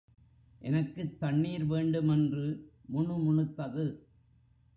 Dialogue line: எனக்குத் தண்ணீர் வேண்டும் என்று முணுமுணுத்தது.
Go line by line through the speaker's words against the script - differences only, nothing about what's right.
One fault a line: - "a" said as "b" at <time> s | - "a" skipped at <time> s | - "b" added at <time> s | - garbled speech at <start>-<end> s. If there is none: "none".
none